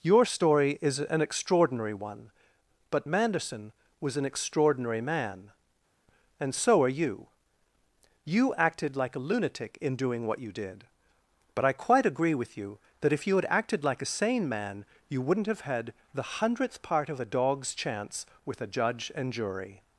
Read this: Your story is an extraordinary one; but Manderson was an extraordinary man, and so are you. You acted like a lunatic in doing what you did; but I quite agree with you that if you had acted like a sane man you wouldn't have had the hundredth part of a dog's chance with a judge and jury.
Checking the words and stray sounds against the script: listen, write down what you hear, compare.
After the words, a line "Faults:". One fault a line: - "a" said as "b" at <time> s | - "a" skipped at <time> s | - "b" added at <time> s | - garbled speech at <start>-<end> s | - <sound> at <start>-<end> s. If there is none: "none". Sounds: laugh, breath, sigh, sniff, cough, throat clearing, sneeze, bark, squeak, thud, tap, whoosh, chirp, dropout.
Your story is an extraordinary one; but Manderson was an extraordinary man, and so are you. You acted like a lunatic in doing what you did; but I quite agree with you that if you had acted like a sane man you wouldn't have had the hundredth part of a dog's chance with a judge and jury.
Faults:
none